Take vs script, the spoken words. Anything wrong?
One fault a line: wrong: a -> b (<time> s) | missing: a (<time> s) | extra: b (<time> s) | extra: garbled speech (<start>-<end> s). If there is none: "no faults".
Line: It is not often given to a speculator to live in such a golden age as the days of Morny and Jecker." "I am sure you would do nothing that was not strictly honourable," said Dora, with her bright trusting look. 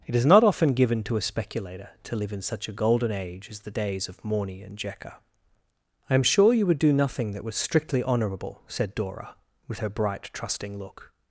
missing: not (7.5 s)